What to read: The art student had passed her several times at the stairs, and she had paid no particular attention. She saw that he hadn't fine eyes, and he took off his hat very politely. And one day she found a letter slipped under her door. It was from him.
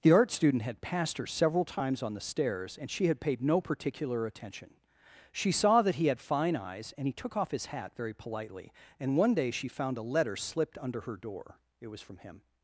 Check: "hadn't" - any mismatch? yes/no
yes